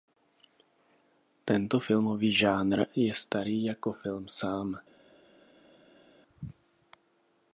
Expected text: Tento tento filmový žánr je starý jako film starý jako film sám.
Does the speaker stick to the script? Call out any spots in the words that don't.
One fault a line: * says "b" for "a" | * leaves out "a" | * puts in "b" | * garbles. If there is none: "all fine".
* leaves out "tento"
* leaves out "starý jako film"